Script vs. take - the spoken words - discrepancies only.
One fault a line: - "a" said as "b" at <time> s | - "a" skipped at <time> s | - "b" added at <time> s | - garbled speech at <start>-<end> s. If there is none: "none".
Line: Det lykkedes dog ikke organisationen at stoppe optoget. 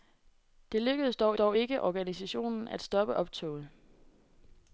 - "dog" added at 1.3 s